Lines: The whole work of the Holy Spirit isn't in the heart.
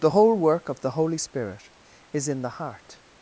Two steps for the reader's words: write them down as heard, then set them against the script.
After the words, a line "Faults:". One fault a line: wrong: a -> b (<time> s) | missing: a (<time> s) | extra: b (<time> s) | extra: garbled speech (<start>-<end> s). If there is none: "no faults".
The whole work of the Holy Spirit is in the heart.
Faults:
wrong: isn't -> is (2.1 s)